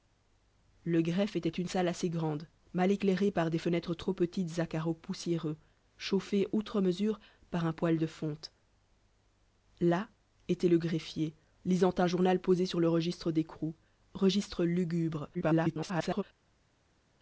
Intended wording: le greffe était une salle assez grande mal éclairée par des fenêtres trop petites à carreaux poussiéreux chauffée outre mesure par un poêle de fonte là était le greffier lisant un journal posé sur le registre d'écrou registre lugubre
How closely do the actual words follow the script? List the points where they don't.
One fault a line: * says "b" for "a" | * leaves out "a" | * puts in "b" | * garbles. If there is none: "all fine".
* garbles